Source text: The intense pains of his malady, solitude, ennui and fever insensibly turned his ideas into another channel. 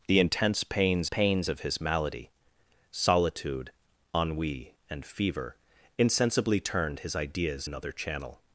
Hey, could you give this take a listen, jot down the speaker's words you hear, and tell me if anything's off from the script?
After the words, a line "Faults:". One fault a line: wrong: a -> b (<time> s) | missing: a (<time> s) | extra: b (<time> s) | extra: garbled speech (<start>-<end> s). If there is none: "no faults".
The intense pains pains of his malady, solitude, ennui and fever insensibly turned his ideas another channel.
Faults:
extra: pains (1.0 s)
missing: into (7.7 s)